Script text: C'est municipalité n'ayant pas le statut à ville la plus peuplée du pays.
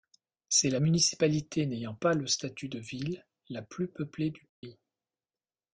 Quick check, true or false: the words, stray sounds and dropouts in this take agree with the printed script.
false